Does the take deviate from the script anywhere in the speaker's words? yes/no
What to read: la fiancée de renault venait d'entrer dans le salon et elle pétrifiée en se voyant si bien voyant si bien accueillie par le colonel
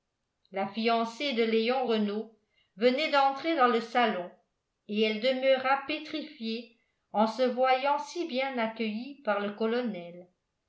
yes